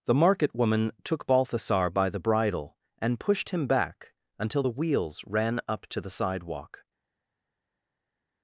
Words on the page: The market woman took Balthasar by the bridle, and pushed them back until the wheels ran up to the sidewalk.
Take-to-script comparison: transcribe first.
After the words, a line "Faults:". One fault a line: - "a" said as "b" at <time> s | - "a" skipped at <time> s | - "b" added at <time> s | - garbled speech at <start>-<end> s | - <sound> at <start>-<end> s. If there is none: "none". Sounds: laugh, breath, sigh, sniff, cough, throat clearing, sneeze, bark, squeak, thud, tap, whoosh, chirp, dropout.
The market woman took Balthasar by the bridle, and pushed him back until the wheels ran up to the sidewalk.
Faults:
- "them" said as "him" at 3.5 s